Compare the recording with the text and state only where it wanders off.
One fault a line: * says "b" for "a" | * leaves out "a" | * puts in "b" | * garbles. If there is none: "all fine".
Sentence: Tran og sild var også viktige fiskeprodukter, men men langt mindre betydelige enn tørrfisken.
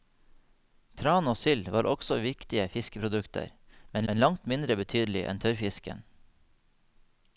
all fine